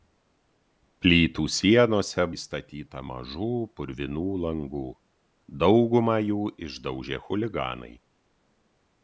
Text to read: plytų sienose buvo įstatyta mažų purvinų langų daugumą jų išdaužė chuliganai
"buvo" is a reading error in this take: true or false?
true